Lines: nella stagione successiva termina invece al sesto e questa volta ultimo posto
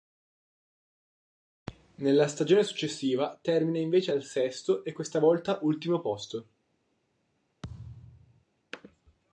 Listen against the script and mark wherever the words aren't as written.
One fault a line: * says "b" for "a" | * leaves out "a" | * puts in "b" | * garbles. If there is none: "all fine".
all fine